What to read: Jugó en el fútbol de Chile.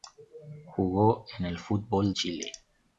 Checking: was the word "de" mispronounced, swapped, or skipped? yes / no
yes